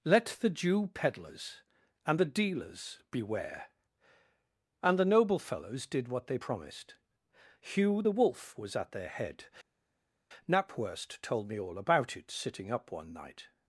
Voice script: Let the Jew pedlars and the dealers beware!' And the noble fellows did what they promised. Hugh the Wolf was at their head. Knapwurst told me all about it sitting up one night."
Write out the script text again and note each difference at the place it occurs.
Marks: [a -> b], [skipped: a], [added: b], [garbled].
Let the Jew pedlars and the dealers beware!' And the noble fellows did what they promised. Hugh the Wolf was at their head. Knapwurst told me all about it sitting up one night."